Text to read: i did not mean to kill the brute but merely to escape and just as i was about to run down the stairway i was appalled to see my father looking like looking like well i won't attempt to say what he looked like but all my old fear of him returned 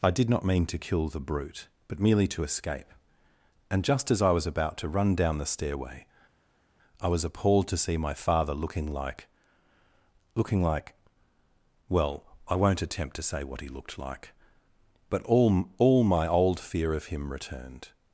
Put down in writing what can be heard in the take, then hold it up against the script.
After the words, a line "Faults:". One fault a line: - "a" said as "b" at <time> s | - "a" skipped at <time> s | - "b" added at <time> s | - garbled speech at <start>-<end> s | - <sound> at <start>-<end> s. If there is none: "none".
i did not mean to kill the brute but merely to escape and just as i was about to run down the stairway i was appalled to see my father looking like looking like well i won't attempt to say what he looked like but all all my old fear of him returned
Faults:
- "all" added at 15.8 s